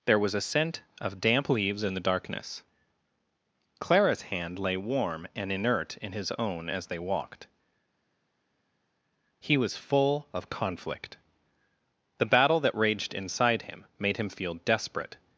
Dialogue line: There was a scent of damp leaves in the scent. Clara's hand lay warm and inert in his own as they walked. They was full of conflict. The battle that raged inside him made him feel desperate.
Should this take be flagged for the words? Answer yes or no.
yes